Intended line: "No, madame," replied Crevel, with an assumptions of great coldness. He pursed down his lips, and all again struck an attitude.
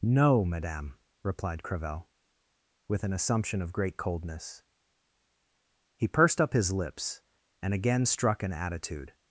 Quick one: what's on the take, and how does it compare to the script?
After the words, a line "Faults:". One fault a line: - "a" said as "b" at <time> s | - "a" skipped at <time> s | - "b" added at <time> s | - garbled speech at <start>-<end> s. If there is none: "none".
"No, madame," replied Crevel, with an assumption of great coldness. He pursed up his lips, and again struck an attitude.
Faults:
- "assumptions" said as "assumption" at 3.1 s
- "down" said as "up" at 6.4 s
- "all" skipped at 7.7 s